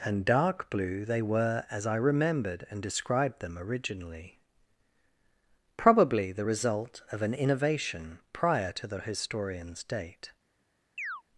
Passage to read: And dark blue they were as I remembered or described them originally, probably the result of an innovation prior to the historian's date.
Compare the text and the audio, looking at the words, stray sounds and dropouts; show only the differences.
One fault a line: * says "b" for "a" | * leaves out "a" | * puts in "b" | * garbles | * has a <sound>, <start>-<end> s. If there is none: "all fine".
* says "and" for "or"
* has a chirp, 11.0-11.2 s